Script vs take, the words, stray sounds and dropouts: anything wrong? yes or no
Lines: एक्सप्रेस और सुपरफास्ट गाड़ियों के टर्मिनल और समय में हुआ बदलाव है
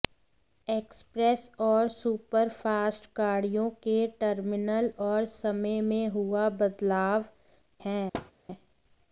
yes